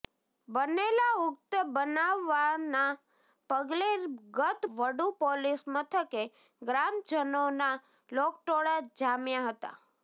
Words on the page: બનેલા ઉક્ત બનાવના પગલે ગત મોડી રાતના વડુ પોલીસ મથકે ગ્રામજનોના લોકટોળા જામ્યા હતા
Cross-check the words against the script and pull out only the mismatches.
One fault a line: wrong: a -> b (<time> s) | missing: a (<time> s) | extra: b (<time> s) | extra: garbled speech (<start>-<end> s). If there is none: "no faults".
missing: મોડી રાતના (4.6 s)